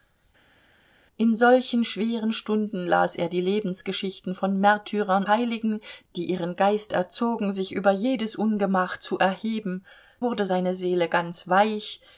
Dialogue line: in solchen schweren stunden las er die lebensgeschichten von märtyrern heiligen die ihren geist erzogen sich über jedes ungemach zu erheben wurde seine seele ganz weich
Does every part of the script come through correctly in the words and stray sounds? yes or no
yes